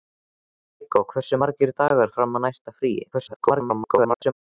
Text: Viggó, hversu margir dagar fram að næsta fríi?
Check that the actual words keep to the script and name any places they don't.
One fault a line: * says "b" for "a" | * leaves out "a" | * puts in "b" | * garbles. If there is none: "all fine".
* garbles